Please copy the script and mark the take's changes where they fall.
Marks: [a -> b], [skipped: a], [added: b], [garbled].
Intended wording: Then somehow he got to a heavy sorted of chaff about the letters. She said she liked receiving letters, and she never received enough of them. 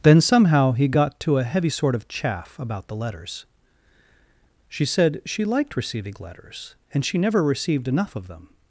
Then somehow he got to a heavy [sorted -> sort] of chaff about the letters. She said she liked receiving letters, and she never received enough of them.